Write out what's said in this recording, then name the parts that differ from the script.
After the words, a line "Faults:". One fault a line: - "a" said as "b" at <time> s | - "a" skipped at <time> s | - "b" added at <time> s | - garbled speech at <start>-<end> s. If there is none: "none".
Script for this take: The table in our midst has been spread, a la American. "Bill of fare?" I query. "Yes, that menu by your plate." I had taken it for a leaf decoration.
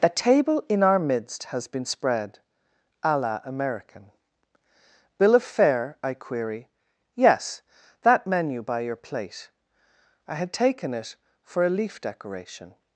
The table in our midst has been spread, a la American. "Bill of fare?" I query. "Yes, that menu by your plate." I had taken it for a leaf decoration.
Faults:
none